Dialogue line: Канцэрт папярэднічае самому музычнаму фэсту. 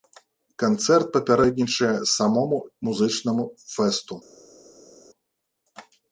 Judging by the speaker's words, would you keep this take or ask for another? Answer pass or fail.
pass